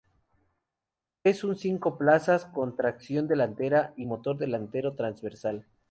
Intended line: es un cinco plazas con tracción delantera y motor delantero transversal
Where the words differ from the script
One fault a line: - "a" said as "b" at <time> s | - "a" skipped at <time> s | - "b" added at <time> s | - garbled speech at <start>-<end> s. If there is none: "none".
none